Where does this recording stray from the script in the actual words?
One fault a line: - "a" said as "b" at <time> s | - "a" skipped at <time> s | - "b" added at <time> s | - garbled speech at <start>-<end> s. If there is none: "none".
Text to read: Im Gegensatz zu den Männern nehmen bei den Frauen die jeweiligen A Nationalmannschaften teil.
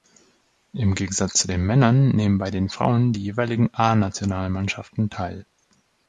none